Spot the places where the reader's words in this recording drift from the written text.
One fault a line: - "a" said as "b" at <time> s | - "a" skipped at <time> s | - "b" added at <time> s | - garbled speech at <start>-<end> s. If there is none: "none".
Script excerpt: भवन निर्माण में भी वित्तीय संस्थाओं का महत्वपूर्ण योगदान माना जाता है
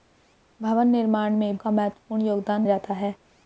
- "भी वित्तीय संस्थाओं" skipped at 1.6 s
- "माना" skipped at 2.7 s